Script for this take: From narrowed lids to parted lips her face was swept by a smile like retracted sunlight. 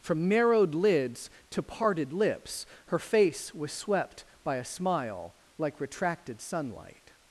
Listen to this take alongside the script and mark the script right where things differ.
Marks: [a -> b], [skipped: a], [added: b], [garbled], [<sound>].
From narrowed lids to parted lips her face was swept by a smile like retracted sunlight.